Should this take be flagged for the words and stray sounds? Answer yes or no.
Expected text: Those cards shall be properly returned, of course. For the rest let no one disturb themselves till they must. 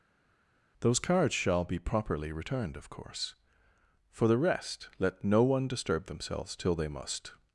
no